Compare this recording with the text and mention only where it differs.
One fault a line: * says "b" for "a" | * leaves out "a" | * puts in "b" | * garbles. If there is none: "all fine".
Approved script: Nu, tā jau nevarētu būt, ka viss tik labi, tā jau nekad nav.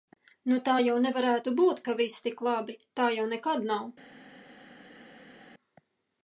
all fine